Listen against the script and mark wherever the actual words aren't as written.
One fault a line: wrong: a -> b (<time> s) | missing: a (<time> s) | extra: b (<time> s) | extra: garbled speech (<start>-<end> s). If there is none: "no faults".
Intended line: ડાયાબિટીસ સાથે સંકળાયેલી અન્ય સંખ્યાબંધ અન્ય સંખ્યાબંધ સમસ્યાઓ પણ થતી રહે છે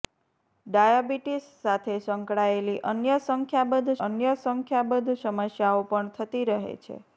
no faults